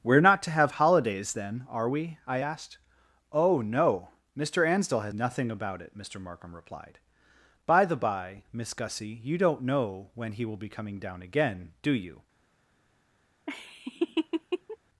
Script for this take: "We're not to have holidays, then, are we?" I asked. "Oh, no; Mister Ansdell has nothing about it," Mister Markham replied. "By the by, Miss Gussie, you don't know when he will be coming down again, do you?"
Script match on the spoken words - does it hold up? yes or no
yes